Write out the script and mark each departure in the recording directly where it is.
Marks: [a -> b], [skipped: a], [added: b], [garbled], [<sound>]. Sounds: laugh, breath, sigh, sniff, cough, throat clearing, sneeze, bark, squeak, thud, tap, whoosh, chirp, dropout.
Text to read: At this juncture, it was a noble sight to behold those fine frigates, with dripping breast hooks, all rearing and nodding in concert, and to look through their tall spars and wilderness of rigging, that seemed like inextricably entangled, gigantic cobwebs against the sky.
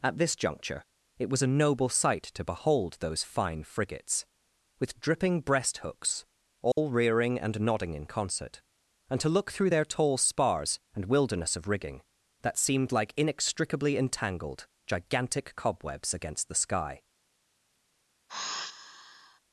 At this juncture, it was a noble sight to behold those fine frigates, with dripping breast hooks, all [dropout] rearing and nodding in concert, and to look through their tall spars and wilderness of rigging, that seemed like inextricably entangled, gigantic cobwebs against the sky. [sigh]